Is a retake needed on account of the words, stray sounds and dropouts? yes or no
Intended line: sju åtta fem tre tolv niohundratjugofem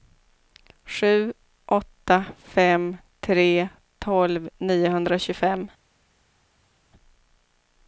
no